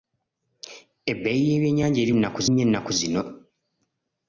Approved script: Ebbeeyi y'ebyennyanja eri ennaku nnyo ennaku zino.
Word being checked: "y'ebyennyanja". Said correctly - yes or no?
yes